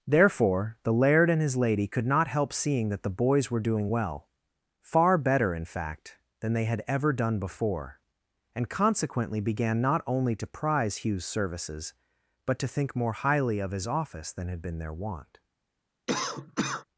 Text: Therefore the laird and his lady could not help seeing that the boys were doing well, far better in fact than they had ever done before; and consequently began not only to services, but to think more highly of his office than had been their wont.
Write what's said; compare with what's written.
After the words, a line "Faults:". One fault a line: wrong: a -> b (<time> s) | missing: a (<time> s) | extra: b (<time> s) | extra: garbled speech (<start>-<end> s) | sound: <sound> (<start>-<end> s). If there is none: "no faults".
Therefore the laird and his lady could not help seeing that the boys were doing well, far better in fact than they had ever done before; and consequently began not only to prize Hugh's services, but to think more highly of his office than had been their wont.
Faults:
extra: prize Hugh's (10.5 s)
sound: cough (16.1-16.8 s)